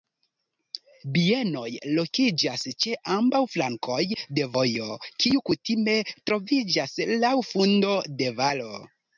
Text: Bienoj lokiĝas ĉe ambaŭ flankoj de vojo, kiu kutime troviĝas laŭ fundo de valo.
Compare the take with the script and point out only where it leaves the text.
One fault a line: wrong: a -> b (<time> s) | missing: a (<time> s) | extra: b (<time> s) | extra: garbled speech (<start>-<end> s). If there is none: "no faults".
no faults